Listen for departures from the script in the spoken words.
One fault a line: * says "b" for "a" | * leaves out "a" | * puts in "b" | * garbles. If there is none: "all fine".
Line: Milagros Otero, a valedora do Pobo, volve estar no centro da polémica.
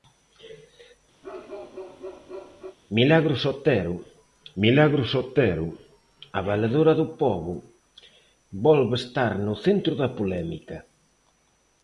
* puts in "milagros Otero"